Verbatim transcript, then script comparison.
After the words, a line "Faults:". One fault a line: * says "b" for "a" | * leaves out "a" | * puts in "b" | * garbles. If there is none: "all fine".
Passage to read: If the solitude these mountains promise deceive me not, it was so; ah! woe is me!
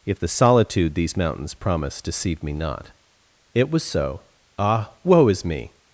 If the solitude these mountains promise deceive me not, it was so; ah! woe is me!
Faults:
all fine